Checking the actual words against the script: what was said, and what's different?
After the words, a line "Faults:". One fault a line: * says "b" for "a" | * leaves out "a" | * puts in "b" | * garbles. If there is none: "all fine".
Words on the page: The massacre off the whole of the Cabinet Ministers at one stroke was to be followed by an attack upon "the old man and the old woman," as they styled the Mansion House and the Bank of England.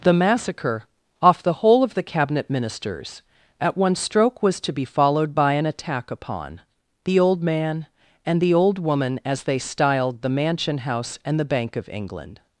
The massacre off the whole of the Cabinet Ministers at one stroke was to be followed by an attack upon "the old man and the old woman," as they styled the Mansion House and the Bank of England.
Faults:
all fine